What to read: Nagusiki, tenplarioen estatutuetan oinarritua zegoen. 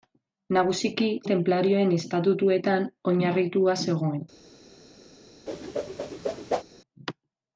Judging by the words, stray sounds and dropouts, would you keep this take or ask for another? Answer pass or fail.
fail